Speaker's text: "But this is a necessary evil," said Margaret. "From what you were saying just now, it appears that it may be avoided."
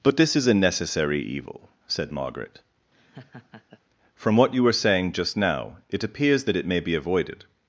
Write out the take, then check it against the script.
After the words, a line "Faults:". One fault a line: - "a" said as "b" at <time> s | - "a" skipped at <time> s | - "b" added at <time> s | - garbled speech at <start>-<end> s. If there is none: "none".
"But this is a necessary evil," said Margaret. "From what you were saying just now, it appears that it may be avoided."
Faults:
none